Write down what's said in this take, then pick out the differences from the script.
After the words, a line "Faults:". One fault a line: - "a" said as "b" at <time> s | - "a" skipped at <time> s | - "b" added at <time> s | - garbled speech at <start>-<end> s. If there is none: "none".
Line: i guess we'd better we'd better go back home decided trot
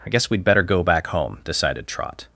i guess we'd better go back home decided trot
Faults:
- "we'd better" skipped at 0.6 s